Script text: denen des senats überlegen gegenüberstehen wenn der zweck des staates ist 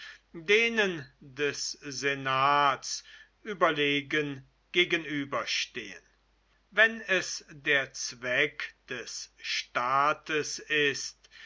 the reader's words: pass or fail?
fail